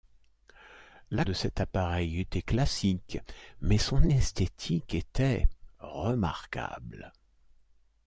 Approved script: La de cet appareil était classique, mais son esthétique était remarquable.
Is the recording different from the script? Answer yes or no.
no